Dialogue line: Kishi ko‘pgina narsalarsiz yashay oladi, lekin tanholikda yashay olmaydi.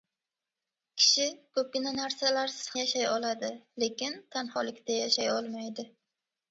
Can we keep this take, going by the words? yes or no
yes